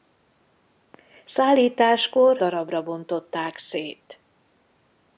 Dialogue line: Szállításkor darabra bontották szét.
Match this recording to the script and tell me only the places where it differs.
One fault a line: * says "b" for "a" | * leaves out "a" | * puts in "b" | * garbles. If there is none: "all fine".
all fine